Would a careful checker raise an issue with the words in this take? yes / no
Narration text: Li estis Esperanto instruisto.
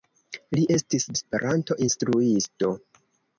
no